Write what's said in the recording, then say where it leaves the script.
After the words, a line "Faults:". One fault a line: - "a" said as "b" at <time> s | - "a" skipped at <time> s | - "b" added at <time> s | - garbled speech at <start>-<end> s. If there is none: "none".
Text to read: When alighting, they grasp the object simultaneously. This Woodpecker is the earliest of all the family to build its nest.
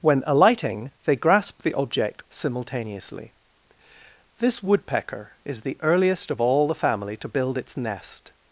When alighting, they grasp the object simultaneously. This Woodpecker is the earliest of all the family to build its nest.
Faults:
none